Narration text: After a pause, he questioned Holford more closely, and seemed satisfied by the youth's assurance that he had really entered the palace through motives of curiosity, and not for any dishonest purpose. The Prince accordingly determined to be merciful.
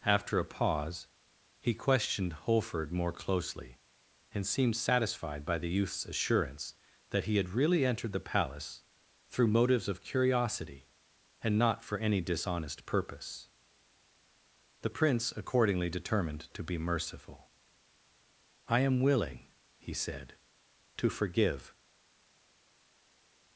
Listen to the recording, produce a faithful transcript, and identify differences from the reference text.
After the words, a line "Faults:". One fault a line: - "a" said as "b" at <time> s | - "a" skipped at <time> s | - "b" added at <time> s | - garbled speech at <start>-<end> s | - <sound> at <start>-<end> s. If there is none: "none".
After a pause, he questioned Holford more closely, and seemed satisfied by the youth's assurance that he had really entered the palace through motives of curiosity, and not for any dishonest purpose. The Prince accordingly determined to be merciful. "I am willing," he said, "to forgive
Faults:
- "I am willing he said to forgive" added at 18.7 s